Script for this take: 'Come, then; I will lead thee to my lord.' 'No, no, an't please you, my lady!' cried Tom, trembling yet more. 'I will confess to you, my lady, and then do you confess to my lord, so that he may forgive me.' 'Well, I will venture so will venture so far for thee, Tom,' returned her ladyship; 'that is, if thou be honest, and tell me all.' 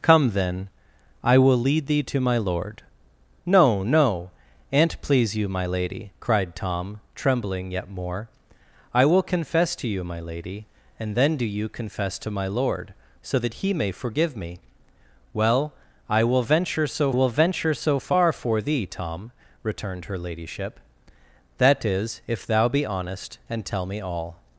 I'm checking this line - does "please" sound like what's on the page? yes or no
yes